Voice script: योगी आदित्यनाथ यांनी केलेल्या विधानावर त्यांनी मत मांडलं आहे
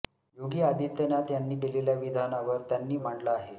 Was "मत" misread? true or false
true